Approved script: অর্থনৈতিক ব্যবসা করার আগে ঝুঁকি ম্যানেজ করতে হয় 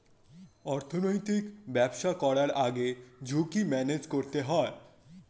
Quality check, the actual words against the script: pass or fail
pass